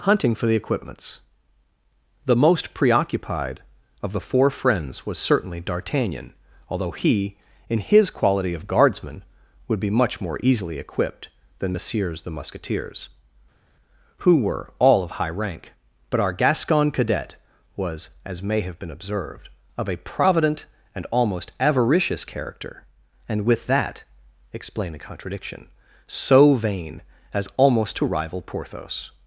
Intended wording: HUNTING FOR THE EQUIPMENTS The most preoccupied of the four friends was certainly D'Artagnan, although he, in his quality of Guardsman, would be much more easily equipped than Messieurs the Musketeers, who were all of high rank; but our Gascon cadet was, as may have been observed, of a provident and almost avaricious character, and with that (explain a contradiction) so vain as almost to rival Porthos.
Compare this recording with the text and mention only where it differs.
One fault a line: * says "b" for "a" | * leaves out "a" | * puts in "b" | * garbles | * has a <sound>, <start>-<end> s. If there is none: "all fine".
all fine